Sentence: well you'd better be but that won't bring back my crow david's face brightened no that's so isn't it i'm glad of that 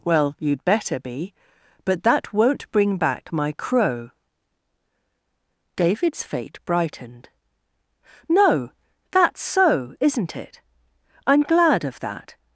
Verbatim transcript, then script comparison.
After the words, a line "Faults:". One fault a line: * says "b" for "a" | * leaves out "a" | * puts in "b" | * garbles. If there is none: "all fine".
well you'd better be but that won't bring back my crow david's fate brightened no that's so isn't it i'm glad of that
Faults:
* says "fate" for "face"